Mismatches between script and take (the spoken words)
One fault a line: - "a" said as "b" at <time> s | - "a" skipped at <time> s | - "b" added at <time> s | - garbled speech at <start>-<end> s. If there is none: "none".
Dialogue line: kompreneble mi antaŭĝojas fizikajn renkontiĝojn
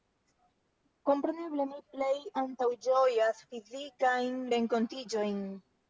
- "plej" added at 1.9 s